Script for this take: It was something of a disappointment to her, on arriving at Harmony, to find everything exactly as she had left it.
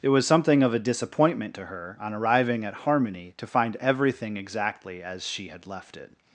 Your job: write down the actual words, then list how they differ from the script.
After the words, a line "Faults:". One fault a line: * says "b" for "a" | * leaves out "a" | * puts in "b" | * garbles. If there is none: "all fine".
It was something of a disappointment to her, on arriving at Harmony, to find everything exactly as she had left it.
Faults:
all fine